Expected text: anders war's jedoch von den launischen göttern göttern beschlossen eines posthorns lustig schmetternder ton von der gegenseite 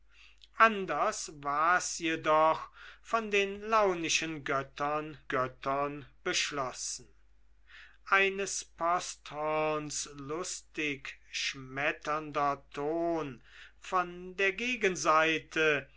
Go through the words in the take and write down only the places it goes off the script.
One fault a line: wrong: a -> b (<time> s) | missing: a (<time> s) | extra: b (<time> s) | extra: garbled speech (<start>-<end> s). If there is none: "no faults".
no faults